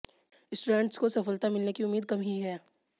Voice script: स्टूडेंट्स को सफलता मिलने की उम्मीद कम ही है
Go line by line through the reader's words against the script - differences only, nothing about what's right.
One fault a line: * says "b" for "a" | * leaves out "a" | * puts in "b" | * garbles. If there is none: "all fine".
all fine